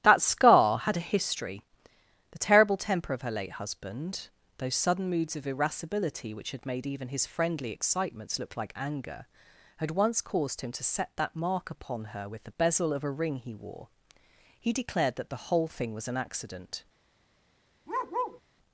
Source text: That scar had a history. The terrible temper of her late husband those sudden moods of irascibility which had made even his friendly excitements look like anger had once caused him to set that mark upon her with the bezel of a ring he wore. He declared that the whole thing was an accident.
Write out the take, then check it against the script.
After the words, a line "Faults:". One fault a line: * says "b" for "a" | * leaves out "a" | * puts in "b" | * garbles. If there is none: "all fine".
That scar had a history. The terrible temper of her late husband those sudden moods of irascibility which had made even his friendly excitements look like anger had once caused him to set that mark upon her with the bezel of a ring he wore. He declared that the whole thing was an accident.
Faults:
all fine